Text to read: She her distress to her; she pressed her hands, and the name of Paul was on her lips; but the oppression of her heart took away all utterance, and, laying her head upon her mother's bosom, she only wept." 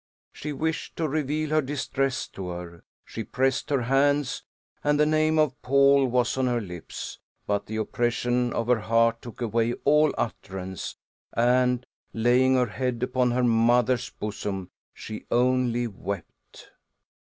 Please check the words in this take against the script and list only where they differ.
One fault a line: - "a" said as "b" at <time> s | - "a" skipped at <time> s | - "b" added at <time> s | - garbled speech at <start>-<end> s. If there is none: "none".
- "wished to reveal" added at 0.5 s